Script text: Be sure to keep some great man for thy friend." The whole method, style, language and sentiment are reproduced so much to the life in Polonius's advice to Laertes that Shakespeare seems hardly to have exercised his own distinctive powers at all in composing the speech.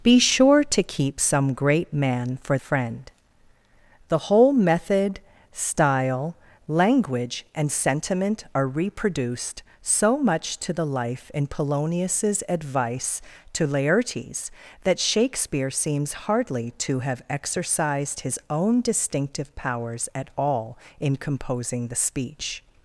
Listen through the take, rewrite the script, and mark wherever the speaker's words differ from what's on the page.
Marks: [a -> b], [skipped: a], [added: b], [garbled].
Be sure to keep some great man for [skipped: thy] friend." The whole method, style, language and sentiment are reproduced so much to the life in Polonius's advice to Laertes that Shakespeare seems hardly to have exercised his own distinctive powers at all in composing the speech.